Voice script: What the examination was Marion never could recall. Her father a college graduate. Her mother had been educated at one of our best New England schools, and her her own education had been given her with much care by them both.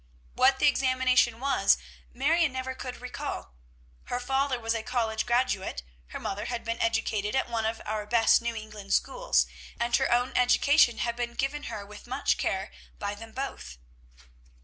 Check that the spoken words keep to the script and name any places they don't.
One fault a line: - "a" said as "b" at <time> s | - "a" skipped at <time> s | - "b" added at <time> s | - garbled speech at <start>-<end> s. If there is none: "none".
- "was" added at 4.6 s
- "her" skipped at 10.1 s